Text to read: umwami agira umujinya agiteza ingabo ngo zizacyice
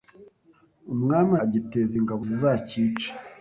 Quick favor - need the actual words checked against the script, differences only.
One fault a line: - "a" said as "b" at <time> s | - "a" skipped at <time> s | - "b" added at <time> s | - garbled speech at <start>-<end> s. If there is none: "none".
- "agira umujinya" skipped at 1.3 s
- "ngo" skipped at 2.2 s